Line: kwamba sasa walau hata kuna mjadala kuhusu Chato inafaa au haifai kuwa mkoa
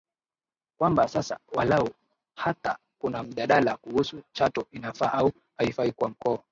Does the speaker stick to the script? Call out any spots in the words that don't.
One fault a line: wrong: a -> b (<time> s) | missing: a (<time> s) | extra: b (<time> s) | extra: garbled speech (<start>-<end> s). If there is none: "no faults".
no faults